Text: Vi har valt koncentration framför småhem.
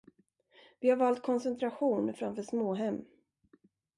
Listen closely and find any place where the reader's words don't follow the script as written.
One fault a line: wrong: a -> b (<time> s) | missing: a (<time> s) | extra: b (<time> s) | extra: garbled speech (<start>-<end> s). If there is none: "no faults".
no faults